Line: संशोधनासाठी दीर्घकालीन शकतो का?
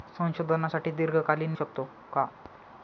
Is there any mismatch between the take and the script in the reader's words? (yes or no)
no